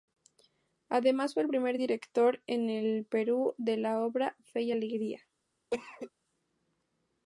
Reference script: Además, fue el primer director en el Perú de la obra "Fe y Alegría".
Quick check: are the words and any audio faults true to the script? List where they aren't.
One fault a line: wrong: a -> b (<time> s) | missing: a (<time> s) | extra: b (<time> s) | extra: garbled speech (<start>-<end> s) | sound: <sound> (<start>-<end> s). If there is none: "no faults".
sound: cough (5.7-6.1 s)